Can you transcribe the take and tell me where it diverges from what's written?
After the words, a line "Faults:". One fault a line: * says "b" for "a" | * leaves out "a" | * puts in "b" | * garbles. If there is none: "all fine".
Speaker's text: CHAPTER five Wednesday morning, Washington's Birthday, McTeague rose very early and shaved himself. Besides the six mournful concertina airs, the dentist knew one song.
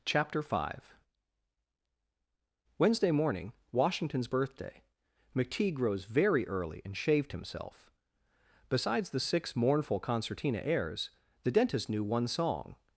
CHAPTER five Wednesday morning, Washington's Birthday, McTeague rose very early and shaved himself. Besides the six mournful concertina airs, the dentist knew one song.
Faults:
all fine